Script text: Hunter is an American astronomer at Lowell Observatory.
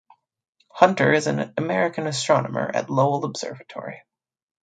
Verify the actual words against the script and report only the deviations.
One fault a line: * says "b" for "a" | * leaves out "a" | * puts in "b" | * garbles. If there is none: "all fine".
all fine